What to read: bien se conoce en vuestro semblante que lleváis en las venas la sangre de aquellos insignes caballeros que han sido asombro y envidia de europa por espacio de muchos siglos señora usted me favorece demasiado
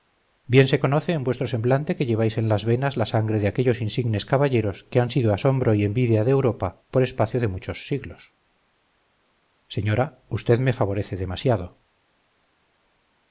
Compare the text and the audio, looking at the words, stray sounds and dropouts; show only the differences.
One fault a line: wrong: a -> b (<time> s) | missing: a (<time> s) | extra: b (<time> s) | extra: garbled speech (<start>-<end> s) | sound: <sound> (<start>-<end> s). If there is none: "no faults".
no faults